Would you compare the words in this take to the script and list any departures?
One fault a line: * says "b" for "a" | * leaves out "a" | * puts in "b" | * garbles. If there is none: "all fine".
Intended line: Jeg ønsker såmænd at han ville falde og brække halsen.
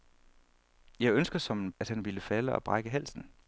all fine